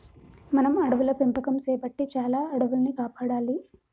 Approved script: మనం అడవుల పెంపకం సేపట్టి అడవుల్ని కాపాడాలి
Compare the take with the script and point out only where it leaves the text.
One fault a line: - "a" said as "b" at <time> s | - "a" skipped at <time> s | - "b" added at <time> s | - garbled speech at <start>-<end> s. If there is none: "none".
- "చాలా" added at 2.1 s